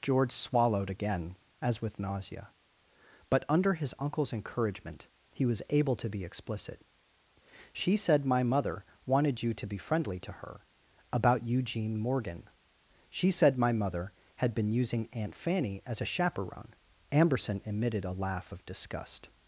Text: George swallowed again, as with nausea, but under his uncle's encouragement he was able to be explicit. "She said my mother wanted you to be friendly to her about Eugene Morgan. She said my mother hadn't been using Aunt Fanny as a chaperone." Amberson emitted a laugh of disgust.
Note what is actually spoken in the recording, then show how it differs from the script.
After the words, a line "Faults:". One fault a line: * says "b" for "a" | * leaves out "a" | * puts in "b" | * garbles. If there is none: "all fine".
George swallowed again, as with nausea, but under his uncle's encouragement he was able to be explicit. "She said my mother wanted you to be friendly to her about Eugene Morgan. She said my mother had been using Aunt Fanny as a chaperone." Amberson emitted a laugh of disgust.
Faults:
* says "had" for "hadn't"